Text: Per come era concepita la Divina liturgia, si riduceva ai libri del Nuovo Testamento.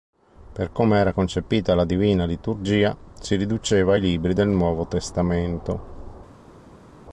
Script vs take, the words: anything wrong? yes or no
no